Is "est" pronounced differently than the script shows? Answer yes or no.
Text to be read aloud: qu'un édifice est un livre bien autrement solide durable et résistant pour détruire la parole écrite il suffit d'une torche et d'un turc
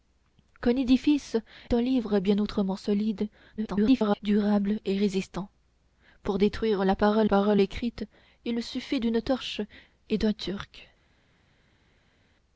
yes